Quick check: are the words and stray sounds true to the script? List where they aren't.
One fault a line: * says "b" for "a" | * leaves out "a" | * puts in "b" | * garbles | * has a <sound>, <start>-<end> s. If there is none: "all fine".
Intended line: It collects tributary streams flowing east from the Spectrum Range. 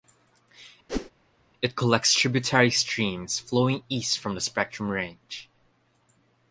* has a whoosh, 0.9-1.1 s